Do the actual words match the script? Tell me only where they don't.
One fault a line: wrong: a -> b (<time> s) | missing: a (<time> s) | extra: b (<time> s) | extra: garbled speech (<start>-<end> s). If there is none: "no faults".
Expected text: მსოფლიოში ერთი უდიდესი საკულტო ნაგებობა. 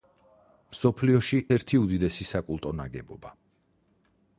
no faults